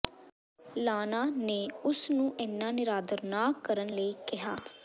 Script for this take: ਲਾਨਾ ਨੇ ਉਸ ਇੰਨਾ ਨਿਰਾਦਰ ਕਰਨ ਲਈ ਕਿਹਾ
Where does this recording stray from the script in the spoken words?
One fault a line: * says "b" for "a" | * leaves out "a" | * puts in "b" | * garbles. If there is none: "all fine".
* puts in "ਨੂੰ"
* puts in "ਨਾ"